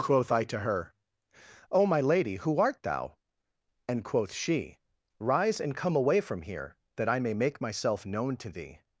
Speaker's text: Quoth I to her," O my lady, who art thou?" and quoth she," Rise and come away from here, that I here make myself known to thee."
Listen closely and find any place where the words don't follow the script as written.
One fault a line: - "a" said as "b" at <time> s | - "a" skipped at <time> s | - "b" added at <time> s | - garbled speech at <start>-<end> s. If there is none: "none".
- "here" said as "may" at 7.2 s